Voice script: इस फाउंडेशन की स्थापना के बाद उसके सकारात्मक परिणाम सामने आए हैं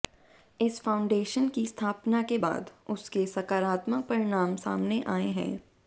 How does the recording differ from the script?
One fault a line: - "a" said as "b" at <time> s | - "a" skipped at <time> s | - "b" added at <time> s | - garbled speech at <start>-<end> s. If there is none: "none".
none